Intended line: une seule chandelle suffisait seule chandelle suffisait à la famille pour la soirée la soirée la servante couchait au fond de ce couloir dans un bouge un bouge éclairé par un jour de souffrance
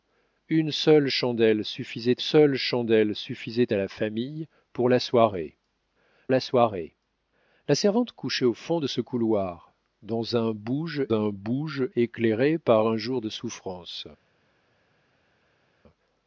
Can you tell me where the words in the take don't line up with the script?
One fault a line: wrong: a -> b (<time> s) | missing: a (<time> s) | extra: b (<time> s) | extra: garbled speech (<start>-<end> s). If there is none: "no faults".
no faults